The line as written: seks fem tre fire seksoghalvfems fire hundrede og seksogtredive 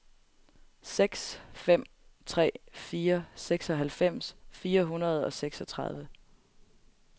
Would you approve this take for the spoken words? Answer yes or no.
yes